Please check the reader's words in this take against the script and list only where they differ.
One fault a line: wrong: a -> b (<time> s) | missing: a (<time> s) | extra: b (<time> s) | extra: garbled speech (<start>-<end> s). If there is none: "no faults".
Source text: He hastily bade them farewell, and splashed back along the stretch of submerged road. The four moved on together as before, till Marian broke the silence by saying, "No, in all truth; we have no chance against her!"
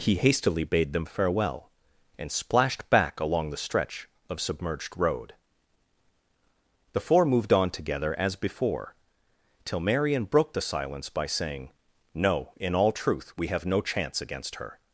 no faults